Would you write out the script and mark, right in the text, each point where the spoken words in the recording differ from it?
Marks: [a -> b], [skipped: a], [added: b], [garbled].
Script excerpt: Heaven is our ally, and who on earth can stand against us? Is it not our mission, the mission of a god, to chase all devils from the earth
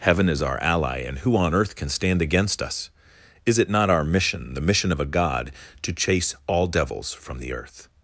Heaven is our ally, and who on earth can stand against us? Is it not our mission, the mission of a god, to chase all devils from the earth